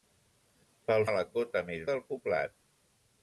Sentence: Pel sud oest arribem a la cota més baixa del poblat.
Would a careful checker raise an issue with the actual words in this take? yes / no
yes